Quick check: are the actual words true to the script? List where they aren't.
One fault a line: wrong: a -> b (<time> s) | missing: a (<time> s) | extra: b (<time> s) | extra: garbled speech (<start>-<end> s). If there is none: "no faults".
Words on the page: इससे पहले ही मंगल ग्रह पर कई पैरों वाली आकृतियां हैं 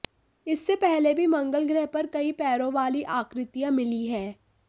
wrong: ही -> भी (1.1 s)
extra: मिली (3.7 s)